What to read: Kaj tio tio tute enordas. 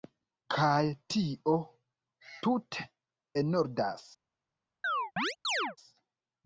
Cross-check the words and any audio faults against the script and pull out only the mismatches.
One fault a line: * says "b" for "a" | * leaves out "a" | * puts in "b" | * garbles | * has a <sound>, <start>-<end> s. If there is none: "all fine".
* leaves out "tio"
* has a chirp, 4.8-5.8 s